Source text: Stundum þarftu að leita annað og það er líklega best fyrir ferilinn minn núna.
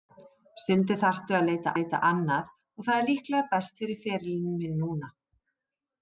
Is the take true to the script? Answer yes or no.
no